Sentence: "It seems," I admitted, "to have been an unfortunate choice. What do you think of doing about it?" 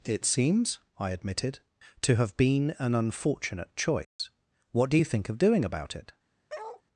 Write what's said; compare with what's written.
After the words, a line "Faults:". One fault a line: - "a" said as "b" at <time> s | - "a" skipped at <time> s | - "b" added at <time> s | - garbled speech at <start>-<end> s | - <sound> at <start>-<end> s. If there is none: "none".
"It seems," I admitted, "to have been an unfortunate choice. What do you think of doing about it?"
Faults:
- dropout at 4.0-4.2 s
- bark at 6.5-6.8 s